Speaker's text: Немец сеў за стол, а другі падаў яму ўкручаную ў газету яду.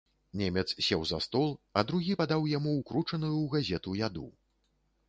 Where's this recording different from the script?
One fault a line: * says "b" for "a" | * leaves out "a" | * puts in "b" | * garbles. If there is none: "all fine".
all fine